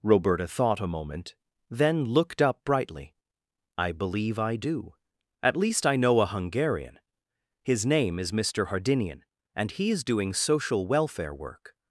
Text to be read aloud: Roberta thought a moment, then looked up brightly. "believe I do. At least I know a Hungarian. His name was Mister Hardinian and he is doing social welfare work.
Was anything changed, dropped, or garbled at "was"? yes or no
yes